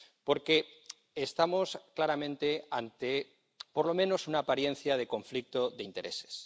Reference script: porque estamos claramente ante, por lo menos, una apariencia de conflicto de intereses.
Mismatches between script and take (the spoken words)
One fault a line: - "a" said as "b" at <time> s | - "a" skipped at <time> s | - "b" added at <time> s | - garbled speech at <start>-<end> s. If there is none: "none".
none